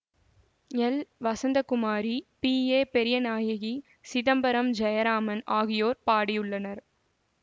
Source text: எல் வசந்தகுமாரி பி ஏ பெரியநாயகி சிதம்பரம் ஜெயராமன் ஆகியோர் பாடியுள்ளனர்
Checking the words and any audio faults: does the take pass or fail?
pass